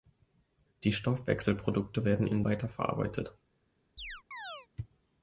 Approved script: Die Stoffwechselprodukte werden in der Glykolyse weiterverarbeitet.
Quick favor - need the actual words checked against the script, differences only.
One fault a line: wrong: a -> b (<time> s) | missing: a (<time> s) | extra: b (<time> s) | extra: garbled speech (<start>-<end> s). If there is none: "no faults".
missing: der Glykolyse (2.4 s)